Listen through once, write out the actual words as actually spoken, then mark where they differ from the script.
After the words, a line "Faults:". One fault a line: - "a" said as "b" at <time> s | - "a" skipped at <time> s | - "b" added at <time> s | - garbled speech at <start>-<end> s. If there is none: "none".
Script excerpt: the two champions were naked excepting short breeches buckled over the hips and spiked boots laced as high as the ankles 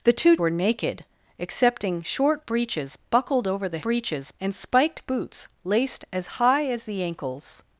the two were naked excepting short breeches buckled over the breeches and spiked boots laced as high as the ankles
Faults:
- "champions" skipped at 0.3 s
- "hips" said as "breeches" at 3.8 s